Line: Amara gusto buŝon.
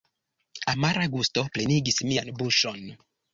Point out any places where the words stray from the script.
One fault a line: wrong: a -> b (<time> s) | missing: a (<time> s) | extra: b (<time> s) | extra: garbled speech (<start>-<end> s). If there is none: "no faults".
extra: plenigis mian (1.6 s)